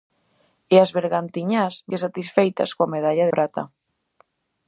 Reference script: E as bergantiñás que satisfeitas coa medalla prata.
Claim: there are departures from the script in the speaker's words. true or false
false